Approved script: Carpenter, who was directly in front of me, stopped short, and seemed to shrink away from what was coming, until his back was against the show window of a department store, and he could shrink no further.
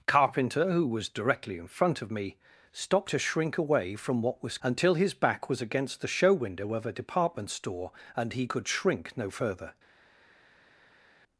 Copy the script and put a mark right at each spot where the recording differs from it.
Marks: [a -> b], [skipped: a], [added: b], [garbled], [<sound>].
Carpenter, who was directly in front of me, stopped [skipped: short, and seemed] to shrink away from what was [skipped: coming,] until his back was against the show window of a department store, and he could shrink no further.